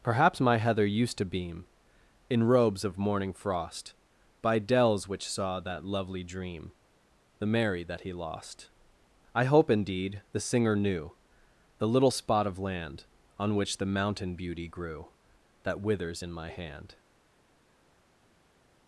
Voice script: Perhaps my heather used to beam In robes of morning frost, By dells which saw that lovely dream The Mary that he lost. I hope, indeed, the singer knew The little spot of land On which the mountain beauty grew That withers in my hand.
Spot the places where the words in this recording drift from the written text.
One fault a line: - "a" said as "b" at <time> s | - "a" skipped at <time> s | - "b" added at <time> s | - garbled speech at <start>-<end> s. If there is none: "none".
none